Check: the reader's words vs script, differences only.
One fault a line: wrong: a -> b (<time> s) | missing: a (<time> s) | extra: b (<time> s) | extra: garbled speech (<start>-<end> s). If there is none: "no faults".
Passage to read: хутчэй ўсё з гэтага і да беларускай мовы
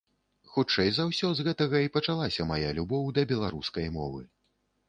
extra: за (0.9 s)
extra: пачалася мая любоў (2.0 s)